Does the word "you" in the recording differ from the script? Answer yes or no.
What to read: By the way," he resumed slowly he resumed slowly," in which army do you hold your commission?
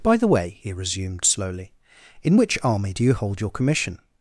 no